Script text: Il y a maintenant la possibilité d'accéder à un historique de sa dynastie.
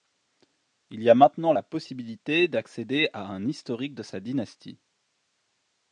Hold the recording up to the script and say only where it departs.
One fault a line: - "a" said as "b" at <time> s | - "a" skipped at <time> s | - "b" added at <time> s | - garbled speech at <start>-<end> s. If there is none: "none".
none